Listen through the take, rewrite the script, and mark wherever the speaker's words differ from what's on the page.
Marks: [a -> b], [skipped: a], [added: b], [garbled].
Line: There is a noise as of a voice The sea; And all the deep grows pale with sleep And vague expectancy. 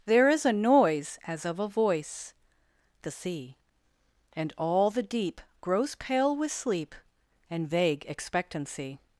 There is a noise as of a voice The sea; And all the deep grows pale with sleep And vague expectancy.